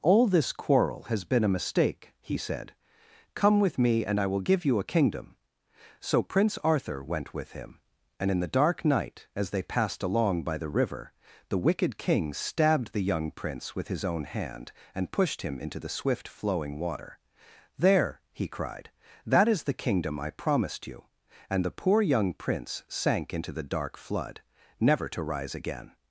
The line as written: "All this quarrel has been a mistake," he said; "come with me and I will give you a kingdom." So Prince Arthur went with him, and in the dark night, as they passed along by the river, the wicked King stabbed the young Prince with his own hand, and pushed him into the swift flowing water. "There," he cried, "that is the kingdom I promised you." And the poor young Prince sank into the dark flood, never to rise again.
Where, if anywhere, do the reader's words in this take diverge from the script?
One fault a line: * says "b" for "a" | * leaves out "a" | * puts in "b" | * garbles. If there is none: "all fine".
all fine